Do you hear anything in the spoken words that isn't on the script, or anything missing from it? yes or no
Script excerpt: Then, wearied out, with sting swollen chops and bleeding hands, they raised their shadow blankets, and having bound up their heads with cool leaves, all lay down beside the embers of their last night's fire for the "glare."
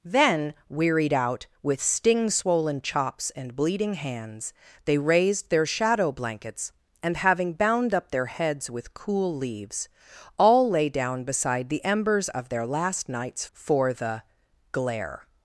yes